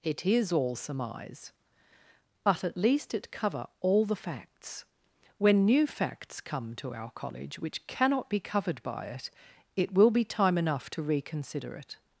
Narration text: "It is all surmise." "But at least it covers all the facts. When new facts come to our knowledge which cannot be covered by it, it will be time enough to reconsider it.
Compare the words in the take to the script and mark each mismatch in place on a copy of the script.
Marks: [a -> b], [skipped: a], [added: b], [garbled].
"It is all surmise." "But at least it [covers -> cover] all the facts. When new facts come to our [knowledge -> college] which cannot be covered by it, it will be time enough to reconsider it.